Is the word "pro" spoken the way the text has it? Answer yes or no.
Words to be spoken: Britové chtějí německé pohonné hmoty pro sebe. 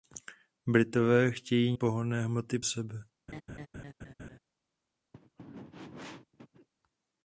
no